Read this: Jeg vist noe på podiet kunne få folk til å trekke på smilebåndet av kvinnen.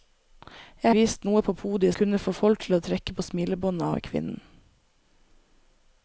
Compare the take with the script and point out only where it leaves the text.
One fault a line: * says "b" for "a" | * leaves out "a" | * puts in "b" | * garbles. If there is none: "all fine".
all fine